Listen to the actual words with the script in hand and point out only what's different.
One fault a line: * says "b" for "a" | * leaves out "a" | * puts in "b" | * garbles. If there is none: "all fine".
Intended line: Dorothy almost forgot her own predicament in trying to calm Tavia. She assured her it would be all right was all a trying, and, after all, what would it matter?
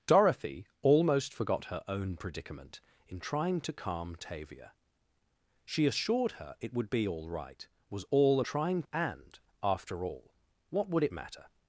all fine